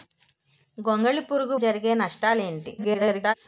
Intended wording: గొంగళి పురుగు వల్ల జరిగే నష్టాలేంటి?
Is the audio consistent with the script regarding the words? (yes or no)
no